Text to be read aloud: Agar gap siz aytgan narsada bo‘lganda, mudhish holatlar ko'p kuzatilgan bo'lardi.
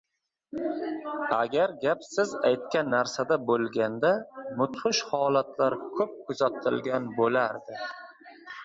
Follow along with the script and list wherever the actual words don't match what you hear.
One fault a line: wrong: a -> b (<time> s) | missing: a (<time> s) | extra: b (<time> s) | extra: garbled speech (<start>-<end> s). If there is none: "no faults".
no faults